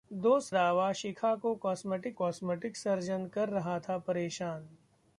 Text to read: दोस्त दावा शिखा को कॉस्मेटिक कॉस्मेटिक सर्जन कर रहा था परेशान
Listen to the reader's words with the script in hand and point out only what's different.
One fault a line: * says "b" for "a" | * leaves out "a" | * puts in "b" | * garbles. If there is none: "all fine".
all fine